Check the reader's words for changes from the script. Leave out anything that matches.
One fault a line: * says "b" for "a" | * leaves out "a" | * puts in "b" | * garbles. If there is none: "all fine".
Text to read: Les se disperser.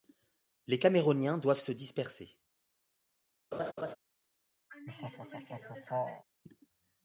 * puts in "caméroniens doivent"